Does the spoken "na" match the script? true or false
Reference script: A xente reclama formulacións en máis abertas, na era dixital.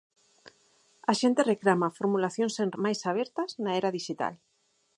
true